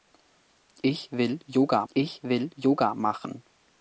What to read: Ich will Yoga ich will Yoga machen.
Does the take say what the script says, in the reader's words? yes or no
yes